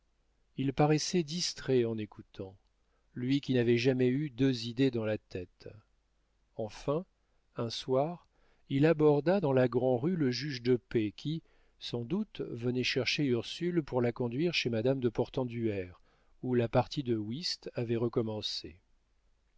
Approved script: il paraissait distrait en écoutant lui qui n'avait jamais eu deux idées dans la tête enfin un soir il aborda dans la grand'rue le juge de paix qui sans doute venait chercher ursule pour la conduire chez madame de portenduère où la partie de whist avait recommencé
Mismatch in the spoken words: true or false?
false